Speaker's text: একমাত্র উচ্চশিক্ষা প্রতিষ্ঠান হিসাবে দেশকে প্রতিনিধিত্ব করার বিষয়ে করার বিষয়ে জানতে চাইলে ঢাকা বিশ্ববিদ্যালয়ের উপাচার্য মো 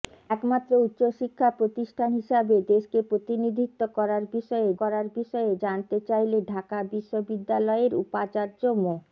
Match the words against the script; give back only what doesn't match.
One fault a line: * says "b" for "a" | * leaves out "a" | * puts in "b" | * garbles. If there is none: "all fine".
all fine